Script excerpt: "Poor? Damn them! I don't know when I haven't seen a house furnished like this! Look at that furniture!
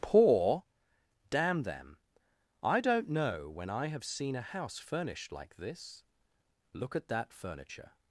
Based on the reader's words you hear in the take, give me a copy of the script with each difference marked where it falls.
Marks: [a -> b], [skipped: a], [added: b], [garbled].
"Poor? Damn them! I don't know when I [haven't -> have] seen a house furnished like this! Look at that furniture!